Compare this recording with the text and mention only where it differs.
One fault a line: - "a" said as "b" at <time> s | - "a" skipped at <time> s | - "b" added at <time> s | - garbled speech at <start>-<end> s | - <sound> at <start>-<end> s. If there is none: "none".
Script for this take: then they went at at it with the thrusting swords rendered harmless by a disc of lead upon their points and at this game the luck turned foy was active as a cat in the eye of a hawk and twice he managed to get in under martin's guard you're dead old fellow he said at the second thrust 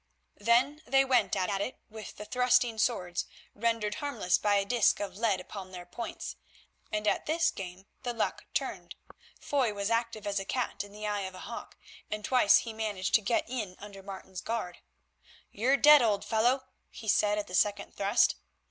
none